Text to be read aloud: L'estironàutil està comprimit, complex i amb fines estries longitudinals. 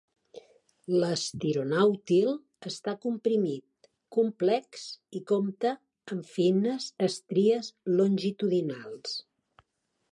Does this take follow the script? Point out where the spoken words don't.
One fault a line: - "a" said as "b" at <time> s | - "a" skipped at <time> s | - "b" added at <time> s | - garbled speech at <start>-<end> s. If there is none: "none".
- "compta" added at 5.3 s